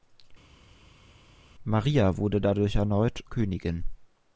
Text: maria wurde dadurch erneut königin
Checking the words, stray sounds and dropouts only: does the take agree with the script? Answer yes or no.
yes